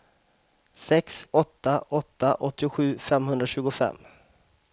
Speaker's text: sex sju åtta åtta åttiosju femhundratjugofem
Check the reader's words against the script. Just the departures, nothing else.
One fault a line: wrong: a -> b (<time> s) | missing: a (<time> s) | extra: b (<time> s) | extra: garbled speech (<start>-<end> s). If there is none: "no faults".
missing: sju (1.3 s)